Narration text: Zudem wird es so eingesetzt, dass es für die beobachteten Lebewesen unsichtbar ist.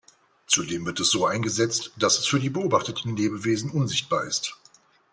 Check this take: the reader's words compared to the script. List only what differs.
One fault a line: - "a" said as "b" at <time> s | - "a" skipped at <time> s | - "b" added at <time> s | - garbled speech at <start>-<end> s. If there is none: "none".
none